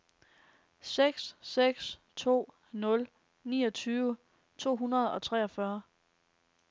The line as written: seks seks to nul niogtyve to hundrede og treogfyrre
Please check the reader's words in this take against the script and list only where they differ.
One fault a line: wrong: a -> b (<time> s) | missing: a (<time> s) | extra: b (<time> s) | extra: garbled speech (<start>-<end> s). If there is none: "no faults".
no faults